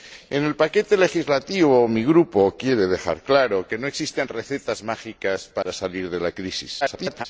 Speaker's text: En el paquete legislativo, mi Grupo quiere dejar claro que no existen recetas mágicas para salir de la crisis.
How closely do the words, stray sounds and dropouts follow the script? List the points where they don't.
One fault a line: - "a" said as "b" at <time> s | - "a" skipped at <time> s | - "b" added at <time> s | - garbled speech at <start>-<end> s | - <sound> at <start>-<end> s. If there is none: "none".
- dropout at 5.6-5.7 s
- garbled speech at 6.8-7.3 s